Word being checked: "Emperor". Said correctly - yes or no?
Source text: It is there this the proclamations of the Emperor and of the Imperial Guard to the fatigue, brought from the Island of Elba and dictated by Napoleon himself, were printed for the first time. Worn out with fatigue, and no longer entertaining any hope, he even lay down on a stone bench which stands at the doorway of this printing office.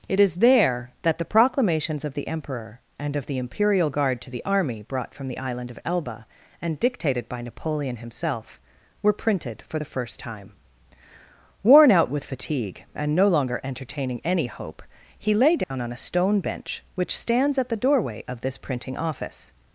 yes